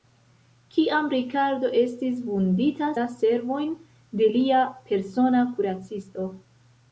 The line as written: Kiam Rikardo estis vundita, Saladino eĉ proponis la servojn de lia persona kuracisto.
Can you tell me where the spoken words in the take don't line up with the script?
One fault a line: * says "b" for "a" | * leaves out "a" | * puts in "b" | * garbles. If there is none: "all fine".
* leaves out "Saladino eĉ proponis"